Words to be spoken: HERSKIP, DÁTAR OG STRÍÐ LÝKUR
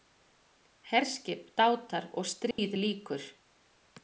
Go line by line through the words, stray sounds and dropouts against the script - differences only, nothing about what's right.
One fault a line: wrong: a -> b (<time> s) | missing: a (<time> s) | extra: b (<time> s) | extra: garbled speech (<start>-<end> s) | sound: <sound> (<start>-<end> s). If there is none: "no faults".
sound: dropout (2.5-2.6 s)